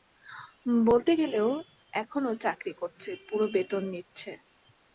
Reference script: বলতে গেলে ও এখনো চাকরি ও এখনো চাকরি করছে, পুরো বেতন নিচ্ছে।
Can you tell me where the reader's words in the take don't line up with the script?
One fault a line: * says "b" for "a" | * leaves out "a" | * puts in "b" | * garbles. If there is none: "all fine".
* leaves out "ও এখনো চাকরি"